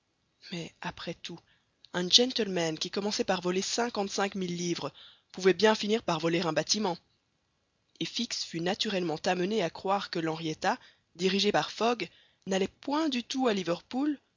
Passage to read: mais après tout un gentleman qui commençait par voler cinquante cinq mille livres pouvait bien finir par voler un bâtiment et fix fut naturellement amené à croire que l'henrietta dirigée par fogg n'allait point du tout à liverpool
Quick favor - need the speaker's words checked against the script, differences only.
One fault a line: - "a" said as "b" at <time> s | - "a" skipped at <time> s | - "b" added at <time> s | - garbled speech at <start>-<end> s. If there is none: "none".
none